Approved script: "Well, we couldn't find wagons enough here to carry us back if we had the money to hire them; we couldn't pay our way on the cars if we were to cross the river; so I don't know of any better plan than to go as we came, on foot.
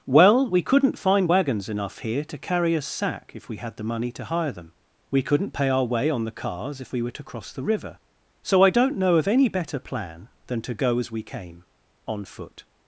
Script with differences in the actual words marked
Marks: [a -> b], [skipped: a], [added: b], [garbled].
"Well, we couldn't find wagons enough here to carry us [back -> sack] if we had the money to hire them; we couldn't pay our way on the cars if we were to cross the river; so I don't know of any better plan than to go as we came, on foot.